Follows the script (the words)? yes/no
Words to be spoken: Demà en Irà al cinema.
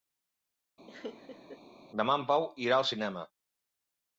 no